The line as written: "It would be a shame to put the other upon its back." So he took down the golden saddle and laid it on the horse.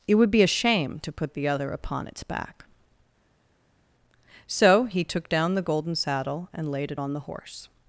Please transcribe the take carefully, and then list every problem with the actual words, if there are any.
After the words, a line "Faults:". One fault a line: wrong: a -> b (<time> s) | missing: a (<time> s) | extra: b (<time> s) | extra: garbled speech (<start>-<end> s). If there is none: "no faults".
"It would be a shame to put the other upon its back." So he took down the golden saddle and laid it on the horse.
Faults:
no faults